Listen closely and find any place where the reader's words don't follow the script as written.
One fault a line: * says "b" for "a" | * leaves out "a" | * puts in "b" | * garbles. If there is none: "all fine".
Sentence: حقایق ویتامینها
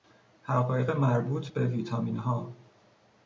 * puts in "مربوط به"